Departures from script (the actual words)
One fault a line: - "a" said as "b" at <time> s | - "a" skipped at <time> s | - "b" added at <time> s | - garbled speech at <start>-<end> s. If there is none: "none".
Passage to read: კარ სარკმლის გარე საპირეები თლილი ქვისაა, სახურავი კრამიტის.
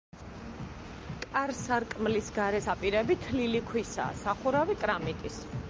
none